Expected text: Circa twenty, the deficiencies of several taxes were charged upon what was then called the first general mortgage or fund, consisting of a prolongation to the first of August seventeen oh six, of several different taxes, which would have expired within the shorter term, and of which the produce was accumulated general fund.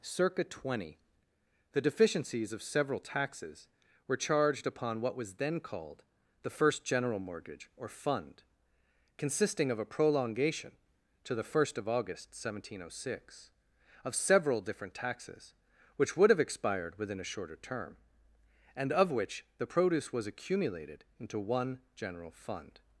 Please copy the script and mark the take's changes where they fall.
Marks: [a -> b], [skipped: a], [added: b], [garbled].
Circa twenty, the deficiencies of several taxes were charged upon what was then called the first general mortgage or fund, consisting of a prolongation to the first of August seventeen oh six, of several different taxes, which would have expired within [the -> a] shorter term, and of which the produce was accumulated [added: into one] general fund.